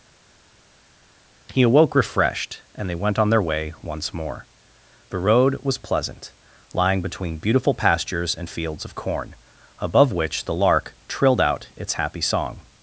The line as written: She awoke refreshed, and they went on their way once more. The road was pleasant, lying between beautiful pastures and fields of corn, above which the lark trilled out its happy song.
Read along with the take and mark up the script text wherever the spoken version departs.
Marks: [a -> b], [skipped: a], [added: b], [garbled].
[She -> He] awoke refreshed, and they went on their way once more. The road was pleasant, lying between beautiful pastures and fields of corn, above which the lark trilled out its happy song.